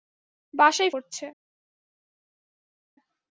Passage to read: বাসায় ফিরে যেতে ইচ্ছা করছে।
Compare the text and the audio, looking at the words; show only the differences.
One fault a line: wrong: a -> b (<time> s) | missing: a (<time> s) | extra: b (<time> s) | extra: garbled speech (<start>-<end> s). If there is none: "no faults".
missing: ফিরে যেতে ইচ্ছা (0.9 s)